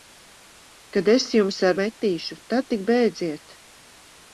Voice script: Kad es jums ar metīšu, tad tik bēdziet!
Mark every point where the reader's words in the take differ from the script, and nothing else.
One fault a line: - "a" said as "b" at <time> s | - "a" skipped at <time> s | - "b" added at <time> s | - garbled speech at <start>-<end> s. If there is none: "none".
none